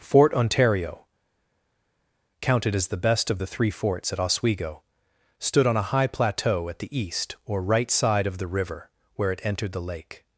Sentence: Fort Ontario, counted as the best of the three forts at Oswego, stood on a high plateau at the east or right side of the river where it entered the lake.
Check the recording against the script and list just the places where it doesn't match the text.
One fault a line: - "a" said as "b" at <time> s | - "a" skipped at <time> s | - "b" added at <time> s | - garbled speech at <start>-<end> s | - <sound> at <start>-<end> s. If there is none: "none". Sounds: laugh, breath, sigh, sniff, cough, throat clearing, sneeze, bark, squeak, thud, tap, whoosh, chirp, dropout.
none